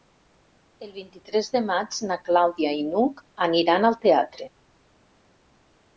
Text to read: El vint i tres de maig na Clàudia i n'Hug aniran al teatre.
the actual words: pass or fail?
pass